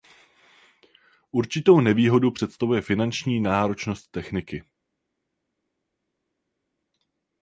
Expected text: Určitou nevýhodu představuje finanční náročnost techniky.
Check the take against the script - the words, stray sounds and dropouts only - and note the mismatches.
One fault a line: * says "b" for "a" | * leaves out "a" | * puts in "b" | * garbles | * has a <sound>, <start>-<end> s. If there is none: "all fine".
all fine